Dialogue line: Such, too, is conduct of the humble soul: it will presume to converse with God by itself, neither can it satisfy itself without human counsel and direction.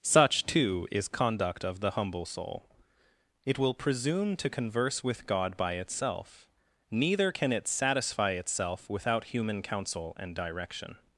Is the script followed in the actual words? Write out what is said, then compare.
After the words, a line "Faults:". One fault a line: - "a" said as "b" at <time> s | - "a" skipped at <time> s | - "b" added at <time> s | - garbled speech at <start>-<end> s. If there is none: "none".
Such, too, is conduct of the humble soul: it will presume to converse with God by itself, neither can it satisfy itself without human counsel and direction.
Faults:
none